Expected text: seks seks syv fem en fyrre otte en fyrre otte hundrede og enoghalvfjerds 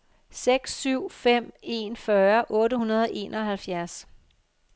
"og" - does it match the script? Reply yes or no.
yes